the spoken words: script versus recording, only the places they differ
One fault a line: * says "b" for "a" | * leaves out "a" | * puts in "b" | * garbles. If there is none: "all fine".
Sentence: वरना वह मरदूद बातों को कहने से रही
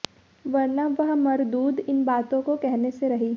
* puts in "इन"